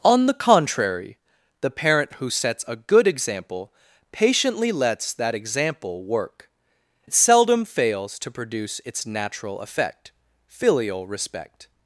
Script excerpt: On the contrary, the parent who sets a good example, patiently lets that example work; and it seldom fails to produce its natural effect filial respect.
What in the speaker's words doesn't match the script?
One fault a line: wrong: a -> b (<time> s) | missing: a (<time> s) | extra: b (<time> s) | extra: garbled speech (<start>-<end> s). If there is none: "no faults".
missing: and (6.5 s)